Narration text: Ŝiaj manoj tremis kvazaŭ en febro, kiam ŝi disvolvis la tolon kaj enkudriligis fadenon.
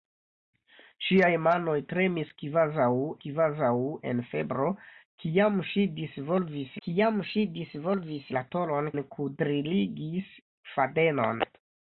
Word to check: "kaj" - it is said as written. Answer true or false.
false